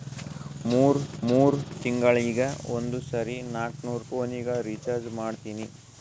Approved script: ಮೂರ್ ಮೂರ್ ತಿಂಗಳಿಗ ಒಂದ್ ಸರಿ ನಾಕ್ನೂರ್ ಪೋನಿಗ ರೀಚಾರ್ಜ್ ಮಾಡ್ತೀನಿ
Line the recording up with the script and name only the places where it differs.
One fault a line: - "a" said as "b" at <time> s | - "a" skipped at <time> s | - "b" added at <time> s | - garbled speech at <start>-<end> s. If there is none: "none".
none